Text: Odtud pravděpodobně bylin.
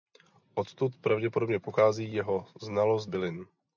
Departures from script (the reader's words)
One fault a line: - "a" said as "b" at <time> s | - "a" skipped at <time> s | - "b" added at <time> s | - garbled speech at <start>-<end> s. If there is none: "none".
- "pochází jeho znalost" added at 1.6 s